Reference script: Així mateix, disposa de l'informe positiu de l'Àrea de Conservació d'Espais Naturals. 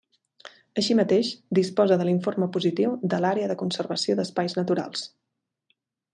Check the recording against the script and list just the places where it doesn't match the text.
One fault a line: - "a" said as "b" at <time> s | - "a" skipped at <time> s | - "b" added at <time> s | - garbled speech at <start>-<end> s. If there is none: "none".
none